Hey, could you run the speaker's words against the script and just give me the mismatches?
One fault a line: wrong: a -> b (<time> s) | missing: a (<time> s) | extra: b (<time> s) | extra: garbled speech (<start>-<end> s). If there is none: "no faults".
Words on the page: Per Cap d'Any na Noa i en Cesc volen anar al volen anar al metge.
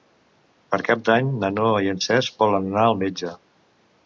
missing: volen anar al (3.0 s)